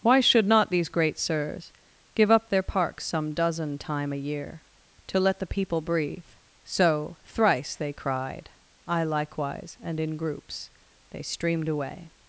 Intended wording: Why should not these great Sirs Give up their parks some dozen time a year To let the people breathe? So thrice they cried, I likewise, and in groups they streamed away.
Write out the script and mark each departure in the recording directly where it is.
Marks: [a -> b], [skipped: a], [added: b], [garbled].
Why should not these great Sirs Give up their parks some dozen time a year To let the people breathe? So thrice they cried, I likewise, and in groups they streamed away.